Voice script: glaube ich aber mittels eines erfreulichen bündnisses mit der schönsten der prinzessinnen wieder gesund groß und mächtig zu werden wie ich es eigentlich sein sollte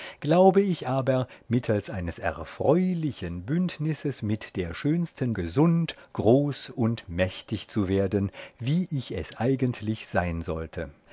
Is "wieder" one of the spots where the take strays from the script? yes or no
yes